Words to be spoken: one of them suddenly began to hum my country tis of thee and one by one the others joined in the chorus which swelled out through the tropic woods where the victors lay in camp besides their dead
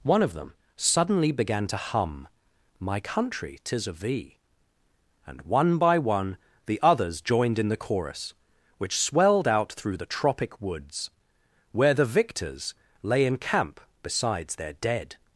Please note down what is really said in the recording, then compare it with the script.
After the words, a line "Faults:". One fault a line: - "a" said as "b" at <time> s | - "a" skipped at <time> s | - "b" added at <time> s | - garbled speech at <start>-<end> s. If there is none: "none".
one of them suddenly began to hum my country tis of thee and one by one the others joined in the chorus which swelled out through the tropic woods where the victors lay in camp besides their dead
Faults:
none